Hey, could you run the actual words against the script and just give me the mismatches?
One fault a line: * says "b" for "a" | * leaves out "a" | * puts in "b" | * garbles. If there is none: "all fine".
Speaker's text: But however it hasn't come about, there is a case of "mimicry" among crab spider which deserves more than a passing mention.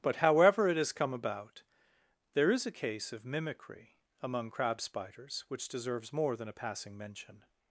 * says "has" for "hasn't"
* says "spiders" for "spider"